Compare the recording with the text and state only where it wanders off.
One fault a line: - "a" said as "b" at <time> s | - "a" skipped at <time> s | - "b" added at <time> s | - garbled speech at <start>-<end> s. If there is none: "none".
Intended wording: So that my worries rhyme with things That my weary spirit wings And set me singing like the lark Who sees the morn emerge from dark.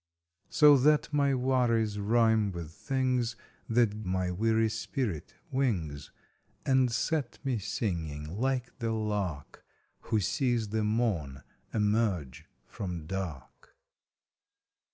none